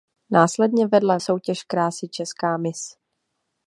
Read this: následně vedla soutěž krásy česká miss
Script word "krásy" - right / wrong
right